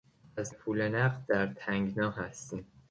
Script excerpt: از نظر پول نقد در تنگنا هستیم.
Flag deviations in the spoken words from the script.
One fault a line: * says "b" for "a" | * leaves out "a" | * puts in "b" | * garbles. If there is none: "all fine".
* leaves out "نظر"